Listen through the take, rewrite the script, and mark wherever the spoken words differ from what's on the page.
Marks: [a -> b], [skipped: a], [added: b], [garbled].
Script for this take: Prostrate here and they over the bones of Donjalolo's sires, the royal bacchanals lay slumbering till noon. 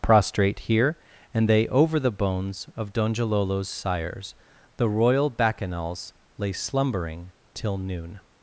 Prostrate here and they over the bones of Donjalolo's sires, the royal bacchanals lay slumbering till noon.